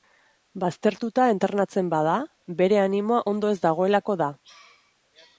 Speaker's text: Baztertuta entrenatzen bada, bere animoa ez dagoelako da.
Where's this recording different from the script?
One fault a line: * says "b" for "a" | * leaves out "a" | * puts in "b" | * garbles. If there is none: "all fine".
* puts in "ondo"